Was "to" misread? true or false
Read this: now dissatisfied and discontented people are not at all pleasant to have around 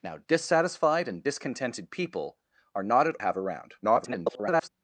true